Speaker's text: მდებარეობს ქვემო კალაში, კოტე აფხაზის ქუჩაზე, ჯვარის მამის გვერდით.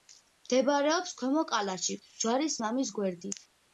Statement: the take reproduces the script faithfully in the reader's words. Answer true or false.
false